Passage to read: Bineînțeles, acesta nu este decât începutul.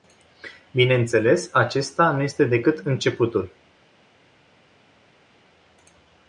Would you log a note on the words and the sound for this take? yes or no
no